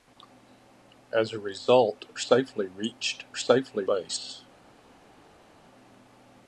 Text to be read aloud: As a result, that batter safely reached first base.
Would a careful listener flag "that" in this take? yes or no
yes